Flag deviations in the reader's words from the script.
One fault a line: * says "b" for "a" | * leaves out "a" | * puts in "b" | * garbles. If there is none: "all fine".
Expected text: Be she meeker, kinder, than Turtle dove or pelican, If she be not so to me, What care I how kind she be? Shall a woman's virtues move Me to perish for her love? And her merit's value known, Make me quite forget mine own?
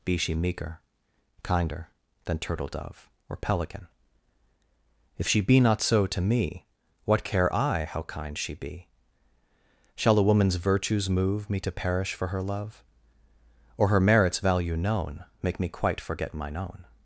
* says "Or" for "And"